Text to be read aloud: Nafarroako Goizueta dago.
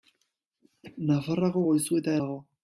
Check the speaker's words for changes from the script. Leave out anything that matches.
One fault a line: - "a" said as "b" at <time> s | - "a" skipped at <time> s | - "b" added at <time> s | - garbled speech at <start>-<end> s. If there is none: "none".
none